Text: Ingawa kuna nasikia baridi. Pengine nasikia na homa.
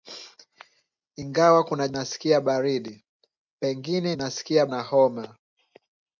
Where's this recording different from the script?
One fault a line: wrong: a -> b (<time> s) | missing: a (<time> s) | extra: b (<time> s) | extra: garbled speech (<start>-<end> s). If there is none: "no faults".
no faults